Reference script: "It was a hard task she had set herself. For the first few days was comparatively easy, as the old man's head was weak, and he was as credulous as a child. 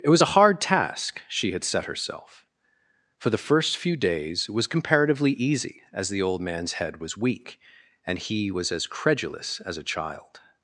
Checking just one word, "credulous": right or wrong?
right